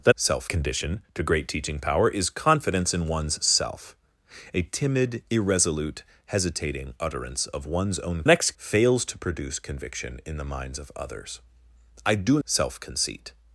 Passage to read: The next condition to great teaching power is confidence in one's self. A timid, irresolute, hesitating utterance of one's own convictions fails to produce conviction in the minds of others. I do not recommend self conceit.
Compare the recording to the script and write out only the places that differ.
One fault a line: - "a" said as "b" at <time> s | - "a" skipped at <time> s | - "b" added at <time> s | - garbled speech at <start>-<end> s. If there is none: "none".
- "next" said as "self" at 0.1 s
- "convictions" said as "next" at 8.3 s
- "not recommend" skipped at 12.4 s